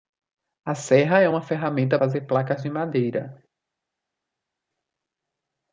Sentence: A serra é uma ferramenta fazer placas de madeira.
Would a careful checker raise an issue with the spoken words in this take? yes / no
no